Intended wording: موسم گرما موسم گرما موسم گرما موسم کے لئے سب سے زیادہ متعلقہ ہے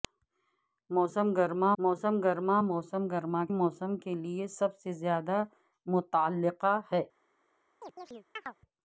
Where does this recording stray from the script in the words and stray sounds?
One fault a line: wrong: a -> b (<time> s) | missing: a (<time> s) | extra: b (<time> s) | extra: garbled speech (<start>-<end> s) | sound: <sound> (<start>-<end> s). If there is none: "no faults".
sound: chirp (7.8-8.6 s)